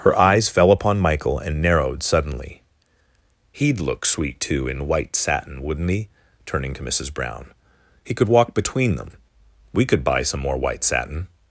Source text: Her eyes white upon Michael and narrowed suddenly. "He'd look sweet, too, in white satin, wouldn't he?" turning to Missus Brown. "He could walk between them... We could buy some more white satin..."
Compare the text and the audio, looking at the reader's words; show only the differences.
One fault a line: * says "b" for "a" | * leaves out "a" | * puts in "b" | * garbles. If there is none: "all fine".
* says "fell" for "white"